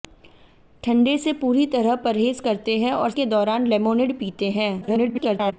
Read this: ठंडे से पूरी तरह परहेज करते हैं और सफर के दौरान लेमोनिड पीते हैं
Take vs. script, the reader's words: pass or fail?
fail